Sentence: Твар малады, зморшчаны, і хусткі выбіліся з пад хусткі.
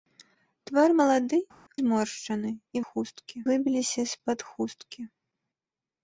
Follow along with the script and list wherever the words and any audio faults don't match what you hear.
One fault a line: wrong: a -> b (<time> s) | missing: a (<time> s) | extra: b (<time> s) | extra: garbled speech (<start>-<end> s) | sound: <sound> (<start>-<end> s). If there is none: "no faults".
no faults